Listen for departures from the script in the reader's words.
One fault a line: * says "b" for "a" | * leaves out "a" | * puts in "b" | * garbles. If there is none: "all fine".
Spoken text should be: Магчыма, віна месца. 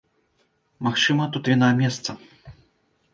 * puts in "тут"